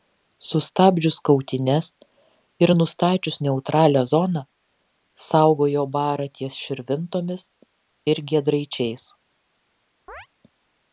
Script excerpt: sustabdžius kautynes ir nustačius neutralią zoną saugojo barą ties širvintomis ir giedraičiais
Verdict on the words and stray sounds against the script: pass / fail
fail